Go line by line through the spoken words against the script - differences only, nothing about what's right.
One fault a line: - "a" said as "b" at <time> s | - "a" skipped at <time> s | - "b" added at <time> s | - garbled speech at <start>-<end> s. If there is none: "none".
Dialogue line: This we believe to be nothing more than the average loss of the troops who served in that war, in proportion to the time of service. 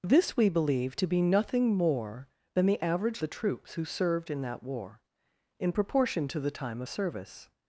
- "loss of" skipped at 3.2 s
- "of" skipped at 6.8 s